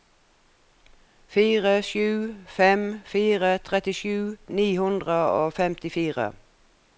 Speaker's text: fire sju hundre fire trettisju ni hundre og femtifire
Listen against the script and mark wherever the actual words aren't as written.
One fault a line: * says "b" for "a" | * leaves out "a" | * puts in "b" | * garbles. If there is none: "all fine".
* says "fem" for "hundre"